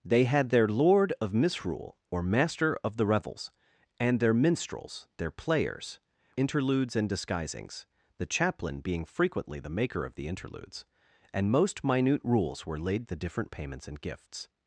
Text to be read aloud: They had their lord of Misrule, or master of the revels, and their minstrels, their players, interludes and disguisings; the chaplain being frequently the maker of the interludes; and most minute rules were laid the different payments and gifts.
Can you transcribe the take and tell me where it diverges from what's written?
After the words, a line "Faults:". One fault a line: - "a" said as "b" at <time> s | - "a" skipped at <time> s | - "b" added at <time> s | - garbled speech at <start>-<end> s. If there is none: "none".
They had their lord of Misrule, or master of the revels, and their minstrels, their players, interludes and disguisings; the chaplain being frequently the maker of the interludes; and most minute rules were laid the different payments and gifts.
Faults:
none